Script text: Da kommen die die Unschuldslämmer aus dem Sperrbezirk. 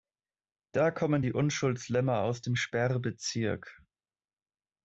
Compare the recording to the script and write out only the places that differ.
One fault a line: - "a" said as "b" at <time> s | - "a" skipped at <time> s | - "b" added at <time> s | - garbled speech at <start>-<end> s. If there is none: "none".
- "die" skipped at 1.3 s